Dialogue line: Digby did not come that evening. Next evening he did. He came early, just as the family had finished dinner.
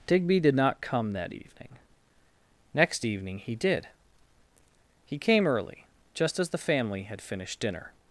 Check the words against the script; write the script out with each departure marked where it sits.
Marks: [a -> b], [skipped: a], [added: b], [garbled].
Digby did not come that evening. Next evening he did. He came early, just as the family had finished dinner.